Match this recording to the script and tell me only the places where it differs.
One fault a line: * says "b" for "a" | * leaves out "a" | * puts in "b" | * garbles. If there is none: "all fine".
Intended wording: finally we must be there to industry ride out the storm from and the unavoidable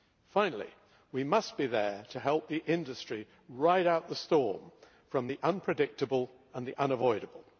* puts in "help the"
* puts in "the unpredictable"